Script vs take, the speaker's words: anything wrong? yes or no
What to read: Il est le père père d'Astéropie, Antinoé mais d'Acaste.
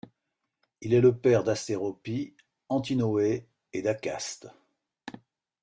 yes